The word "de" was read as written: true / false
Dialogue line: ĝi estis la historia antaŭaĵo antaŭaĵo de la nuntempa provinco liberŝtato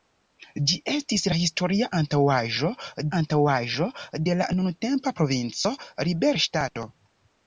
true